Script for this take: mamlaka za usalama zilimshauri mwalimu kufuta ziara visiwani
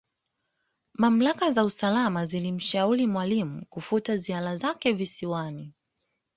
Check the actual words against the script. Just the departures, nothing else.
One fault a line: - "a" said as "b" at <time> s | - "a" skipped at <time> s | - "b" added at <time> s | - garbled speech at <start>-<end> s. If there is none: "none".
- "zake" added at 4.5 s